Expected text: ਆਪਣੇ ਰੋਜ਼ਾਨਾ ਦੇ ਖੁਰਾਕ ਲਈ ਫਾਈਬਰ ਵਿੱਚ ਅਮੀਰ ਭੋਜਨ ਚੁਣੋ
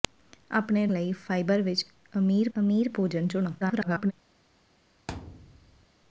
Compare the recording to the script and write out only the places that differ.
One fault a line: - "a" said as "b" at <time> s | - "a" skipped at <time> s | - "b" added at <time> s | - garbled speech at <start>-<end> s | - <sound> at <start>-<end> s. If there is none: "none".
- "ਰੋਜ਼ਾਨਾ ਦੇ ਖੁਰਾਕ" skipped at 0.8 s
- "ਅਮੀਰ" added at 2.5 s
- garbled speech at 3.6-4.1 s
- thud at 5.1-5.9 s